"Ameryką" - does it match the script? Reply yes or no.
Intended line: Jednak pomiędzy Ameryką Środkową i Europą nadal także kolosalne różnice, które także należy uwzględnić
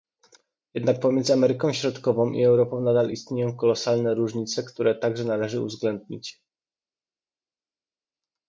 yes